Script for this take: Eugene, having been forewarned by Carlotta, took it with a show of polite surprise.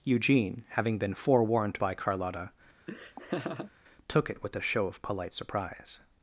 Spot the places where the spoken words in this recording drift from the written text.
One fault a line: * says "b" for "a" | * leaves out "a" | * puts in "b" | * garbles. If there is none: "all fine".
all fine